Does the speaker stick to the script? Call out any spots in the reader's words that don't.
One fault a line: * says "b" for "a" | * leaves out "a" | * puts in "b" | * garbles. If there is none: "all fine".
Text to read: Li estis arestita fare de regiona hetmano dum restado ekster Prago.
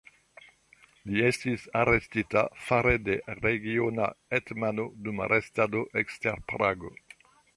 all fine